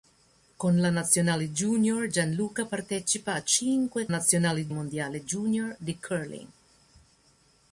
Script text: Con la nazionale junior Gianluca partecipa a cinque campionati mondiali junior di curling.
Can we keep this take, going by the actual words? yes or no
no